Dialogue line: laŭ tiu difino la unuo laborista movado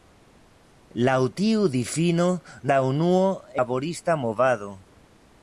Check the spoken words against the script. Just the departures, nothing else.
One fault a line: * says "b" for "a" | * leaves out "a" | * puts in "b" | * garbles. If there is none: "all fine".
all fine